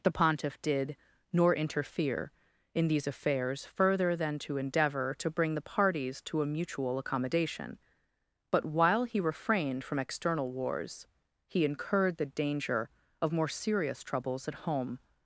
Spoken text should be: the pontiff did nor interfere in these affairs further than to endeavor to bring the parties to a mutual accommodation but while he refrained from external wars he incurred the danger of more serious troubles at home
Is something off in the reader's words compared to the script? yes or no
no